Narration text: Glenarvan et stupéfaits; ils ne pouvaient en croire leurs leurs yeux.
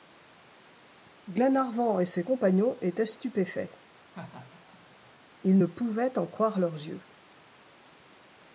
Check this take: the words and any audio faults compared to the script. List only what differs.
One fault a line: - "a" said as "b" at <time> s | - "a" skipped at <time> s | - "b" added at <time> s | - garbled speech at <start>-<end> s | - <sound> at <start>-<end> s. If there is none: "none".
- "ses compagnons étaient" added at 2.0 s
- laugh at 4.1-5.1 s
- "leurs" skipped at 6.7 s